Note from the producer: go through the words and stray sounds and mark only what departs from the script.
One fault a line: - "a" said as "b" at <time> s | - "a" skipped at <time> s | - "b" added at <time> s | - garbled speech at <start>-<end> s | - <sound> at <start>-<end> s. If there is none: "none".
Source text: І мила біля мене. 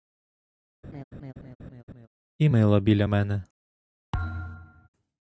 - laugh at 0.8-2.1 s
- thud at 4.1-4.9 s